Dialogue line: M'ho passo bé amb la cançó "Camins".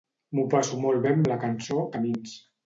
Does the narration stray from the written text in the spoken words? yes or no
yes